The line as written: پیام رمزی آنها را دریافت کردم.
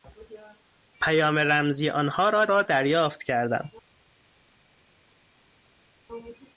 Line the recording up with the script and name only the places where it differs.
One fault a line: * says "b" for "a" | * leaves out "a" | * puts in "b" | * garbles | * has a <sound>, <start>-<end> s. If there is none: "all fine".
* puts in "را"